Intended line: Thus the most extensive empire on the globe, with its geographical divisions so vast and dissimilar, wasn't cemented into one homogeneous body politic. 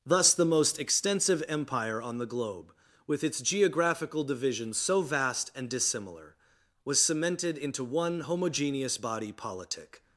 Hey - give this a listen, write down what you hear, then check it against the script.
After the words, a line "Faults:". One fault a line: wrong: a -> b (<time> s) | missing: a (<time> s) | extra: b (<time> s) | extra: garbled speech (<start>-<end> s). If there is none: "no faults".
Thus the most extensive empire on the globe, with its geographical divisions so vast and dissimilar, was cemented into one homogeneous body politic.
Faults:
wrong: wasn't -> was (6.8 s)